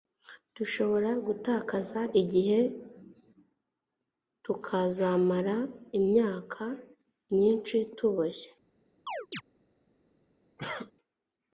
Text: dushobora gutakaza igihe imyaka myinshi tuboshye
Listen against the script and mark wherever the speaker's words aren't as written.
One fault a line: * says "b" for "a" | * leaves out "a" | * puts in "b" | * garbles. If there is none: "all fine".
* puts in "tukazamara"